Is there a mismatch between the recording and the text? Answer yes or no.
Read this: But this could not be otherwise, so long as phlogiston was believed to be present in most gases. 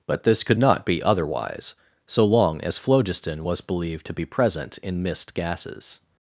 yes